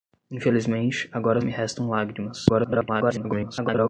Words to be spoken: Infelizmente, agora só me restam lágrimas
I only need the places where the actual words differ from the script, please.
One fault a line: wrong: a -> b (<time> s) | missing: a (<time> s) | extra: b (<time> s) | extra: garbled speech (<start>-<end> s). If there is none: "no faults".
missing: só (1.4 s)
extra: garbled speech (2.5-3.9 s)